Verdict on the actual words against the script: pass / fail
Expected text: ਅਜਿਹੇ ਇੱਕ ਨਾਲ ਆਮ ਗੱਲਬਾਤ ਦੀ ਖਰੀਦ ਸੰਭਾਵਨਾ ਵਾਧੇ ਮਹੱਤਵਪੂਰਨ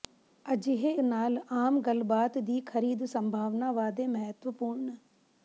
fail